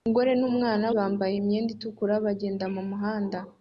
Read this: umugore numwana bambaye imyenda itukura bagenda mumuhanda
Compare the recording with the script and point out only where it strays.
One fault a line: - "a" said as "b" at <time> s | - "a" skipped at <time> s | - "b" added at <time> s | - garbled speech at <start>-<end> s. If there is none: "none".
none